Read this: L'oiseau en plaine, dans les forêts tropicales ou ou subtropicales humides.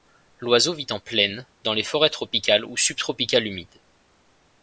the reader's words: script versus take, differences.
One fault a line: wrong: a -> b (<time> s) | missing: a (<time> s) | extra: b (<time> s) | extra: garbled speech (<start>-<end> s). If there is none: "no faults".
extra: vit (0.7 s)
missing: ou (2.8 s)